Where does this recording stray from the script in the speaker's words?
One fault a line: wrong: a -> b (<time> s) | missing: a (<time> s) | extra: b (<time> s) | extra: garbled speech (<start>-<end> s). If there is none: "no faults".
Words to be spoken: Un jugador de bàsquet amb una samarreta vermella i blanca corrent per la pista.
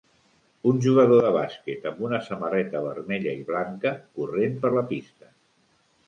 no faults